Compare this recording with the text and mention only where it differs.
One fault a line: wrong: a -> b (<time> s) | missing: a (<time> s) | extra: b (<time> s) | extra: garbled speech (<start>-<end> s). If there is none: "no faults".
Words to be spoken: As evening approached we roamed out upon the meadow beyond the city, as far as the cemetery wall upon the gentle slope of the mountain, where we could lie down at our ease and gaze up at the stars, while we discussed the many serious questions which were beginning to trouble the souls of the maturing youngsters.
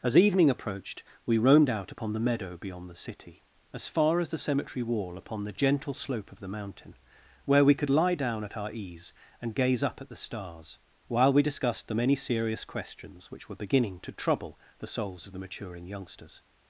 no faults